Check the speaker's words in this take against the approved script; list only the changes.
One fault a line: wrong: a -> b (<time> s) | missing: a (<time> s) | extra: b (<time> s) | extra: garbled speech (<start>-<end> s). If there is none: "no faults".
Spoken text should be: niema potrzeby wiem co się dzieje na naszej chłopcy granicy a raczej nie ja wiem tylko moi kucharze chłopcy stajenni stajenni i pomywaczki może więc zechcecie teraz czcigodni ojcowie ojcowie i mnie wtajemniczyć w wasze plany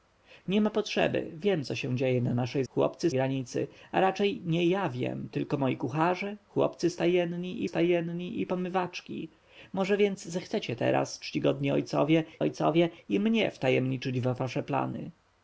no faults